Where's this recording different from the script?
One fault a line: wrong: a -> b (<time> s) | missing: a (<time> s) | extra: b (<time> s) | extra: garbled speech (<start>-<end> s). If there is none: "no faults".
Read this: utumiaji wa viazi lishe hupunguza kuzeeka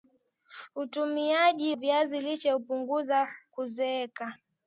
missing: wa (1.8 s)